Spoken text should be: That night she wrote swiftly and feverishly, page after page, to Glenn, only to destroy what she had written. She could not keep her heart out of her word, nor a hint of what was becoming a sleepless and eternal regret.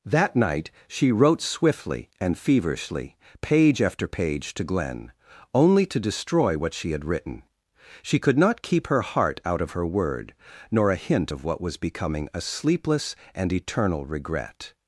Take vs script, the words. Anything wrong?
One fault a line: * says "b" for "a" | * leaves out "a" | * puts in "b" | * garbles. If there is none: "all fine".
all fine